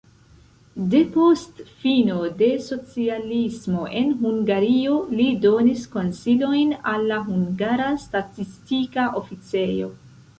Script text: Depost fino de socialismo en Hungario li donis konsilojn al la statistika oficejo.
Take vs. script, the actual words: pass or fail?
fail